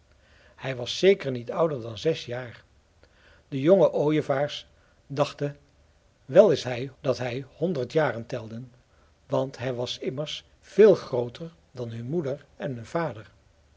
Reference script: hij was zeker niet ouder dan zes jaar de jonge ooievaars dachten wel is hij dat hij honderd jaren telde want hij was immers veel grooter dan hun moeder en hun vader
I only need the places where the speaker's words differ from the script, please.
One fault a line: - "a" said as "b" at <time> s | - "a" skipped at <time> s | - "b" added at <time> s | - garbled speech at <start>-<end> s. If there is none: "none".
none